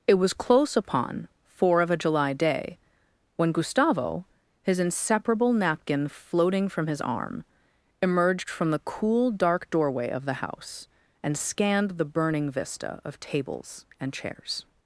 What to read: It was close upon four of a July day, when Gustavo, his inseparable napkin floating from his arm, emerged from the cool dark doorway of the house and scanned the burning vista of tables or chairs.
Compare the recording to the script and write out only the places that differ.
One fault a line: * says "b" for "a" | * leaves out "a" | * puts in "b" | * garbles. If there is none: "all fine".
* says "and" for "or"